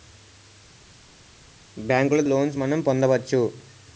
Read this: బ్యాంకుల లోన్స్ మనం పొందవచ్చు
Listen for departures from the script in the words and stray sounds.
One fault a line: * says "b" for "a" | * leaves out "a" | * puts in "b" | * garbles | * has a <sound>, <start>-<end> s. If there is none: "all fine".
all fine